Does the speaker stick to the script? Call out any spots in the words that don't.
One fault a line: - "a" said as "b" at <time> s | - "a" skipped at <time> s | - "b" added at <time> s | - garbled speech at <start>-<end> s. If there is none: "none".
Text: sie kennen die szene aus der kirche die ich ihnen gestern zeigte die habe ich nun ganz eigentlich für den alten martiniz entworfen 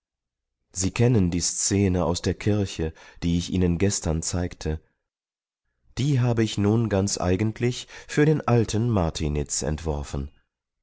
none